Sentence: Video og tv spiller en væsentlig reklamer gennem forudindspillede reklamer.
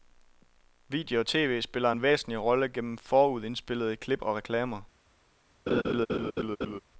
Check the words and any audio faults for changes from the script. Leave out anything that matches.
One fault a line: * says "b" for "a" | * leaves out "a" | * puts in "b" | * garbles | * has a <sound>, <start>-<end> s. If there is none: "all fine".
* says "rolle" for "reklamer"
* puts in "klip og"
* has a laugh, 5.7-6.8 s